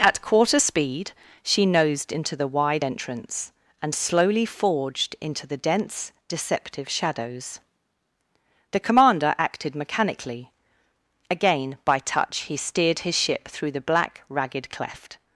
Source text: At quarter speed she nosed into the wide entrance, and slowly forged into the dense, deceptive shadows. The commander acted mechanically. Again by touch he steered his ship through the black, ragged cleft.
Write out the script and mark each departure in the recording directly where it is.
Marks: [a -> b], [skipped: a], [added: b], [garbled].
At quarter speed she nosed into the wide entrance, and slowly forged into the dense, deceptive shadows. The commander acted mechanically. Again by touch he steered his ship through the black, ragged cleft.